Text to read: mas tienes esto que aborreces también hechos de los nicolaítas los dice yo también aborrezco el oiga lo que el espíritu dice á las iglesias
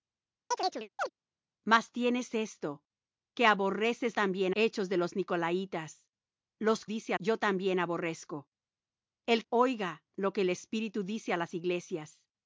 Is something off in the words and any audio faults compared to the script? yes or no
yes